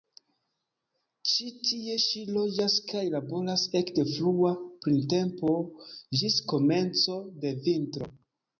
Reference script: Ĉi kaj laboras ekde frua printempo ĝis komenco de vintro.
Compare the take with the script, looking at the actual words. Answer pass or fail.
fail